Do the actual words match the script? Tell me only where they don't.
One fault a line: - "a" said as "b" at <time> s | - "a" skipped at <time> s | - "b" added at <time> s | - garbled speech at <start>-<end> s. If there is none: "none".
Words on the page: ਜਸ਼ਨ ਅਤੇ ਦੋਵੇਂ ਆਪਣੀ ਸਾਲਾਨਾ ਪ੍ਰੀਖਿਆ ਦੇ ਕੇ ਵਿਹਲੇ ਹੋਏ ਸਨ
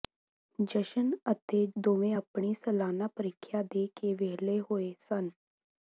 none